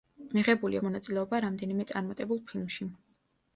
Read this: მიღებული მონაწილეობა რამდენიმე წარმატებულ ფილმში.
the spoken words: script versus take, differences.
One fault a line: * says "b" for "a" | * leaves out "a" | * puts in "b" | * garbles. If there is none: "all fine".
all fine